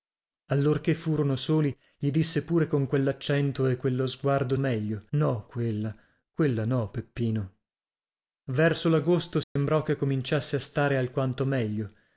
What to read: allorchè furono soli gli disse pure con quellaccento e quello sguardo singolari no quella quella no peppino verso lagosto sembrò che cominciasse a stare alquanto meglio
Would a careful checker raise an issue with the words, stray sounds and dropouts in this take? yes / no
yes